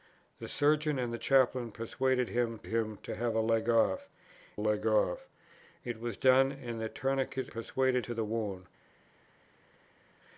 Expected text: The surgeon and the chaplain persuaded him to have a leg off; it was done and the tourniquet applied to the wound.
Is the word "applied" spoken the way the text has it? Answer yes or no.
no